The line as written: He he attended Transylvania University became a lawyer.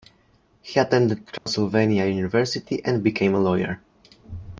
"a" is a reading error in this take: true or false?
false